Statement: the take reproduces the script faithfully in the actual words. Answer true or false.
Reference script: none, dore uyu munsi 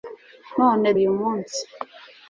false